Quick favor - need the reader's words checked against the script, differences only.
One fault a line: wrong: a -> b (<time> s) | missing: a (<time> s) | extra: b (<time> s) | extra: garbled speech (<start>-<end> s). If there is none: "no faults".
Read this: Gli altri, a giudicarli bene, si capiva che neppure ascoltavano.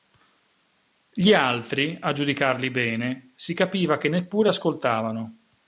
no faults